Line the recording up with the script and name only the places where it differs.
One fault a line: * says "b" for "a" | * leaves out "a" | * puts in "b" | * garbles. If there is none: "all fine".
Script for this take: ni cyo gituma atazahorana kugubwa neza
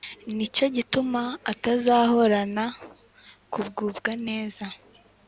all fine